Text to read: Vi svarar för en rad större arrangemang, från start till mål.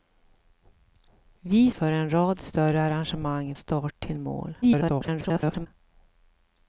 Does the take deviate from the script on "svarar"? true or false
true